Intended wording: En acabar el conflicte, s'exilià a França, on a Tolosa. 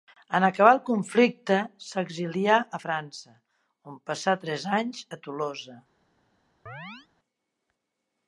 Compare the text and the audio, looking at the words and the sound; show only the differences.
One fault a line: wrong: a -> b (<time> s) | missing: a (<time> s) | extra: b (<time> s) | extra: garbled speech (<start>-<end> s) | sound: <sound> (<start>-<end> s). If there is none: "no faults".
extra: passà tres anys (4.1 s)
sound: chirp (6.7-7.1 s)